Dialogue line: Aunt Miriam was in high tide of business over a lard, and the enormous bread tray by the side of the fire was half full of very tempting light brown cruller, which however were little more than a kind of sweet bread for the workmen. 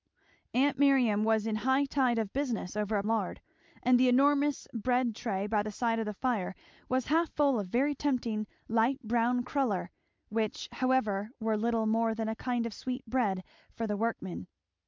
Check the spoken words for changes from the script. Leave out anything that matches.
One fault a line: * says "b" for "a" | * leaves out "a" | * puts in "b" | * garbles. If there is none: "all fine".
all fine